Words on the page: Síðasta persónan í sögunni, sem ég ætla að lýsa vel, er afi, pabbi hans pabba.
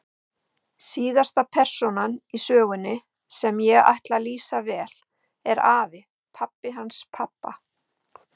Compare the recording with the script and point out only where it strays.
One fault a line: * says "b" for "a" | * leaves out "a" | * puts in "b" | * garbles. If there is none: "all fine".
all fine